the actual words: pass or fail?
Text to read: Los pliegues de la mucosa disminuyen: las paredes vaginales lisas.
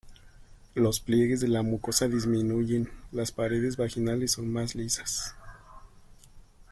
fail